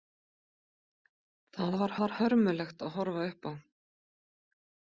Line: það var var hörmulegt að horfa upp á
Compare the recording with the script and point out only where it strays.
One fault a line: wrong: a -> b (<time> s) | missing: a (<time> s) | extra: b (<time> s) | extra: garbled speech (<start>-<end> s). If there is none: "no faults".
no faults